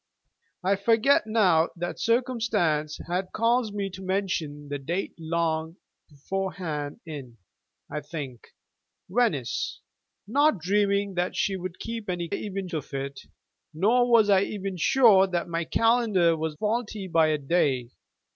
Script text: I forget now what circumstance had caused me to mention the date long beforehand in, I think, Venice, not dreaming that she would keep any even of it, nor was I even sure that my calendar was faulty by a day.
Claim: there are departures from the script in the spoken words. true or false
false